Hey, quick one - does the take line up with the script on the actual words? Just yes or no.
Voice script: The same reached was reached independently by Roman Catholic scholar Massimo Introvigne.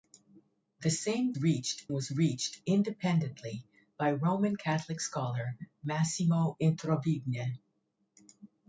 yes